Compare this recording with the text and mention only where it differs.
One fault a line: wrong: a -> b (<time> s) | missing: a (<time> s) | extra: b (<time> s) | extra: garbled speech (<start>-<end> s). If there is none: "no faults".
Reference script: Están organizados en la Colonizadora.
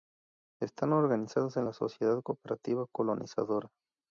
extra: Sociedad Cooperativa (1.7 s)